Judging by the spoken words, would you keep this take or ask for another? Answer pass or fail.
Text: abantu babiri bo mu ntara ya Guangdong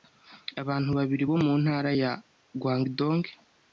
pass